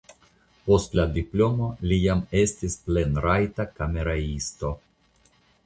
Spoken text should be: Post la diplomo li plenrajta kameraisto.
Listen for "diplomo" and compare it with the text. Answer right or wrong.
right